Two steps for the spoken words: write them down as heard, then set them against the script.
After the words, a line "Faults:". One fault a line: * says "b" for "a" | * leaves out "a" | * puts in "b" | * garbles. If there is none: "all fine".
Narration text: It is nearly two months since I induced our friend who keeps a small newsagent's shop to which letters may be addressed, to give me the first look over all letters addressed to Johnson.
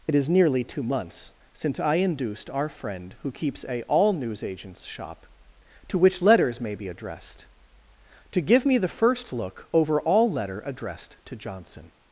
It is nearly two months since I induced our friend who keeps a all newsagent's shop to which letters may be addressed, to give me the first look over all letter addressed to Johnson.
Faults:
* says "all" for "small"
* says "letter" for "letters"